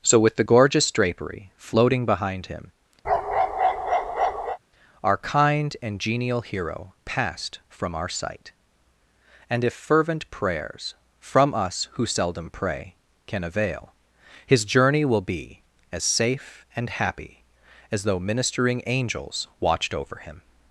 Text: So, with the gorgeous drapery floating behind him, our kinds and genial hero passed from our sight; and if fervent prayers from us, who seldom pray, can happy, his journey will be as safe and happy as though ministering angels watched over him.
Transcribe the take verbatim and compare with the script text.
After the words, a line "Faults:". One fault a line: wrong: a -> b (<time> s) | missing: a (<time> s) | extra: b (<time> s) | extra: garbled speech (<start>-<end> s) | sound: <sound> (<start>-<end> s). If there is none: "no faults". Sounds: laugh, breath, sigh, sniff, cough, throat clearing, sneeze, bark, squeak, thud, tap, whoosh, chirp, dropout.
So, with the gorgeous drapery floating behind him, our kind and genial hero passed from our sight; and if fervent prayers from us, who seldom pray, can avail, his journey will be as safe and happy as though ministering angels watched over him.
Faults:
sound: bark (3.0-4.6 s)
wrong: kinds -> kind (5.2 s)
wrong: happy -> avail (13.4 s)